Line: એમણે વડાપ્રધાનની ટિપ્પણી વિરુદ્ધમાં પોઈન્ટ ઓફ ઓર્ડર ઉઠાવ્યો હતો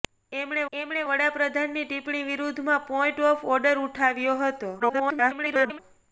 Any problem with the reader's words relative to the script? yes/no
yes